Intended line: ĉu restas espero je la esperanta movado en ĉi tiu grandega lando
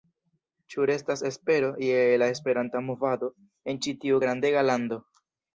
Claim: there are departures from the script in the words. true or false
false